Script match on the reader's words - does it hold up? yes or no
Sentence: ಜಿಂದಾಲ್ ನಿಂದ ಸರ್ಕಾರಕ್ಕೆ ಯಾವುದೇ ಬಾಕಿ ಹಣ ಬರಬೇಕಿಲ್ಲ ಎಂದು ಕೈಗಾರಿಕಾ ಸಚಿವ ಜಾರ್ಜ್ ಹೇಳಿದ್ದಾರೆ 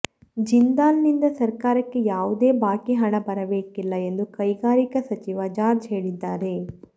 yes